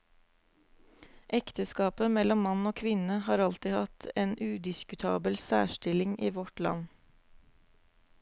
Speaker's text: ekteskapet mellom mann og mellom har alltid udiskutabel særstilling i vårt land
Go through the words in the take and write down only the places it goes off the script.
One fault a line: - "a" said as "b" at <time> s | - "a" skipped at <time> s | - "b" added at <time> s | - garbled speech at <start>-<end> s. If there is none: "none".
- "mellom" said as "kvinne" at 2.8 s
- "hatt en" added at 3.8 s